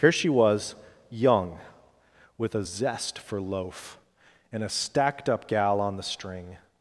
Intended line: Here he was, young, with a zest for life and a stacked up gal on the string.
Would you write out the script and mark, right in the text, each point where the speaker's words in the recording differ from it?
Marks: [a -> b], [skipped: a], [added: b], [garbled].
Here [he -> she] was, young, with a zest for [life -> loaf] and a stacked up gal on the string.